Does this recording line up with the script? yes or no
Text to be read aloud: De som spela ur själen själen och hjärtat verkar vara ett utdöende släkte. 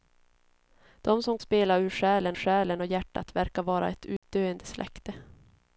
yes